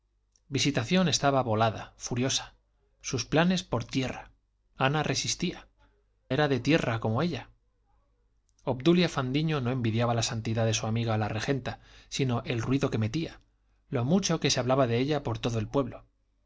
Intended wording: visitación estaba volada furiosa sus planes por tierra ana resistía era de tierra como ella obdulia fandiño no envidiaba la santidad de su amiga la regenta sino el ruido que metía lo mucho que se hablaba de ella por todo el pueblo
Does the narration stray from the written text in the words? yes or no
no